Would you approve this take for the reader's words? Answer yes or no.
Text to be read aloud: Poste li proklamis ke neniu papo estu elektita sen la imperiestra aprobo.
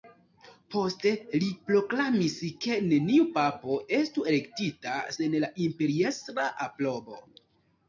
yes